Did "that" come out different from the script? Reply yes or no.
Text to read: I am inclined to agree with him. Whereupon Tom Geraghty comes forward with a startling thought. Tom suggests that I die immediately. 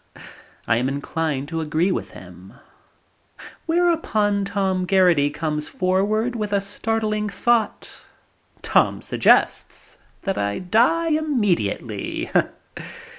no